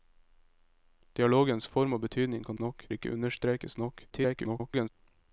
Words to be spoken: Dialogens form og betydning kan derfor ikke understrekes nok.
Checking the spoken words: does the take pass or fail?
fail